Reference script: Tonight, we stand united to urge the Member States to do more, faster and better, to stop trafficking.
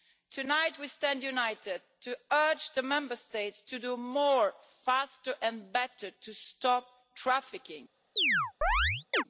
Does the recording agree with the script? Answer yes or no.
yes